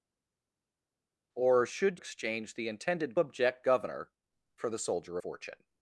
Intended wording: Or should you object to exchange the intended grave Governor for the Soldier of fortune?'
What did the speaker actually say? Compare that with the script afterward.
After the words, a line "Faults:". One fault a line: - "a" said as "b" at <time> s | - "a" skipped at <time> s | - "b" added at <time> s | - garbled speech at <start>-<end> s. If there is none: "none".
Or should exchange the intended object Governor for the Soldier fortune?'
Faults:
- "you object to" skipped at 2.0 s
- "grave" said as "object" at 3.2 s
- "of" skipped at 5.2 s